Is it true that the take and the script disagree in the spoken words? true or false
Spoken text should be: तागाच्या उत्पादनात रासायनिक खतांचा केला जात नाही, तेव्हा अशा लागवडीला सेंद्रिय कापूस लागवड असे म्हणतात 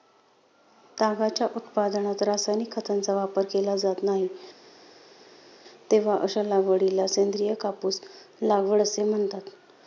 true